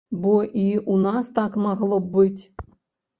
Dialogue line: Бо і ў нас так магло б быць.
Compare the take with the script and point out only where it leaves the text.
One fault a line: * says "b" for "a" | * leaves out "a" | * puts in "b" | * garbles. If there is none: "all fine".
all fine